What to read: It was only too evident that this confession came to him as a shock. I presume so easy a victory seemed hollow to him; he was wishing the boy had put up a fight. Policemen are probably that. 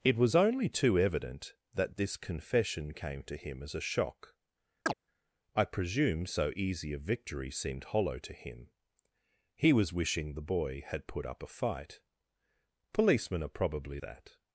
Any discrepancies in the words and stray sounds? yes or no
yes